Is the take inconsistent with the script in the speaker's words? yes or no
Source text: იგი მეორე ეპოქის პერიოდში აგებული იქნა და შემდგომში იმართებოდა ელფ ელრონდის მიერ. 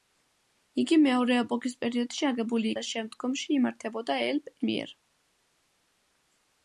yes